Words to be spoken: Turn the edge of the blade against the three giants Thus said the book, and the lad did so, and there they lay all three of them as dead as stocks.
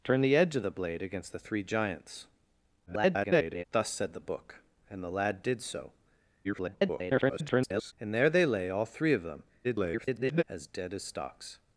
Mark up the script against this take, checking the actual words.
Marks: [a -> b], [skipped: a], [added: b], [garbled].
Turn the edge of the blade against the three giants [garbled] Thus said the book, and the lad did so, [garbled] and there they lay all three of them [garbled] as dead as stocks.